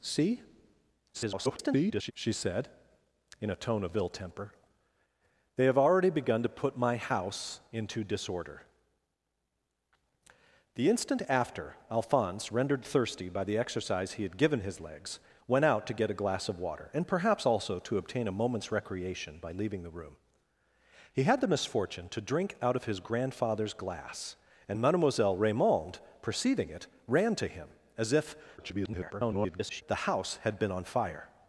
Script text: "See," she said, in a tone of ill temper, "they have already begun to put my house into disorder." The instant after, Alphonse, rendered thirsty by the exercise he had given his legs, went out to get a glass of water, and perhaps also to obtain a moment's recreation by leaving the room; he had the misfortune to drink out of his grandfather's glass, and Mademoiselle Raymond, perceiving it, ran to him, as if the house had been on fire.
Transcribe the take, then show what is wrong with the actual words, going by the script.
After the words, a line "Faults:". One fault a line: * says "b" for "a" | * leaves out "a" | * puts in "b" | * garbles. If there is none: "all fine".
"See," [garbled] she said, in a tone of ill temper, "they have already begun to put my house into disorder." The instant after, Alphonse, rendered thirsty by the exercise he had given his legs, went out to get a glass of water, and perhaps also to obtain a moment's recreation by leaving the room; he had the misfortune to drink out of his grandfather's glass, and Mademoiselle Raymond, perceiving it, ran to him, as if [garbled] the house had been on fire.
Faults:
* garbles
* garbles